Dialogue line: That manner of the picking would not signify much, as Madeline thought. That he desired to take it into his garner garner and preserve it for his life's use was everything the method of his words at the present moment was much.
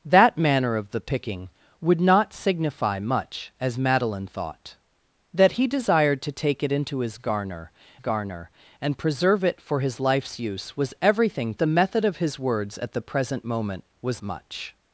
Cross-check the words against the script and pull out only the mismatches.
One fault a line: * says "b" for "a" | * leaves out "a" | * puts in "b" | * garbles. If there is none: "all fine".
all fine